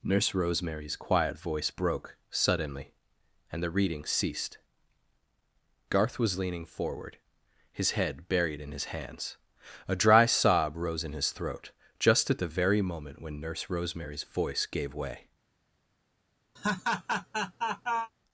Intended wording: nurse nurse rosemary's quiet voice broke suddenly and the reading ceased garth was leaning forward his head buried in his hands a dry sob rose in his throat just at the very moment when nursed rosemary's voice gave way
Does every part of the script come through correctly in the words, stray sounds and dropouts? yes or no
no